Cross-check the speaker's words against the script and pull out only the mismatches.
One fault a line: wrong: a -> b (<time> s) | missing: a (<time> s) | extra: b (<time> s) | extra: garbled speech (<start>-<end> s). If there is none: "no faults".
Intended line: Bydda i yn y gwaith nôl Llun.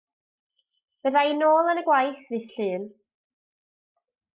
extra: nôl (1.4 s)
wrong: nôl -> ddydd (2.3 s)